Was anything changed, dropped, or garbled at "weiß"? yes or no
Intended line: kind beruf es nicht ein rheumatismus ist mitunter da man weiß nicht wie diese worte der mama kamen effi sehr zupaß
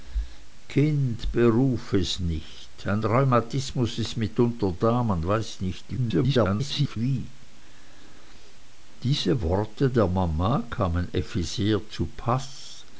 no